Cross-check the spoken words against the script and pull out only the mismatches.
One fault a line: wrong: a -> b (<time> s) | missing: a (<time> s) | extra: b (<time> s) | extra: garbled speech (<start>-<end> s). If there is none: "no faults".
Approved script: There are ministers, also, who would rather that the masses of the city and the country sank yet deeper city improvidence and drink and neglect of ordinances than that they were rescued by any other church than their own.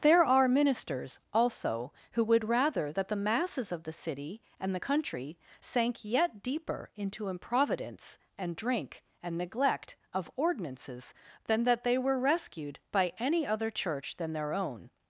wrong: city -> into (7.0 s)